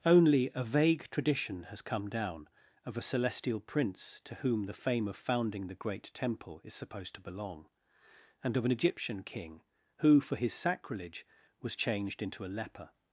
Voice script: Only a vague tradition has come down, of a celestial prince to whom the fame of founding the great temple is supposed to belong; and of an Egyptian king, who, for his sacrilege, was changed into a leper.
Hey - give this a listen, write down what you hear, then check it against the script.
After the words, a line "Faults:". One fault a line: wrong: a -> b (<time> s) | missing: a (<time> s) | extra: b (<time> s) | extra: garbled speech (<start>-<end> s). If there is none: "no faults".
Only a vague tradition has come down, of a celestial prince to whom the fame of founding the great temple is supposed to belong; and of an Egyptian king, who, for his sacrilege, was changed into a leper.
Faults:
no faults